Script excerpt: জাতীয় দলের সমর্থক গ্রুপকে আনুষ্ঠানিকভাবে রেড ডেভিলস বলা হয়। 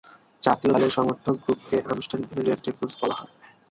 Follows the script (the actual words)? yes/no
yes